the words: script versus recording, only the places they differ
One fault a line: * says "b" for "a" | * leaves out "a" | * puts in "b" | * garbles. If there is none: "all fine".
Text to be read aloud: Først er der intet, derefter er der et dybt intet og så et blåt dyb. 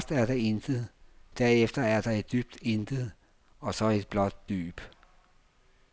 all fine